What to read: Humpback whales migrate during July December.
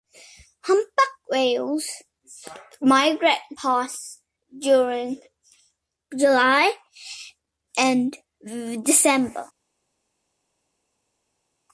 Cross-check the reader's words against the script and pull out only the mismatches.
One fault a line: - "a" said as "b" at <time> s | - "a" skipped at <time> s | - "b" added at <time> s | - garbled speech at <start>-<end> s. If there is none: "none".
- "past" added at 3.6 s
- "and" added at 7.8 s